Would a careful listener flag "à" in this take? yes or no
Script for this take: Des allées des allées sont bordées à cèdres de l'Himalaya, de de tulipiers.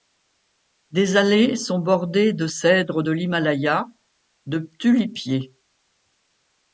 yes